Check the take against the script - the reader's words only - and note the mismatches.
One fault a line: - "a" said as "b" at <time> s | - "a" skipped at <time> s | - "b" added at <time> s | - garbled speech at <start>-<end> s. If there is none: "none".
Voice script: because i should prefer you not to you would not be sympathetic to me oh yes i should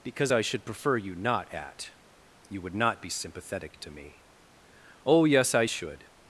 - "to" said as "at" at 1.5 s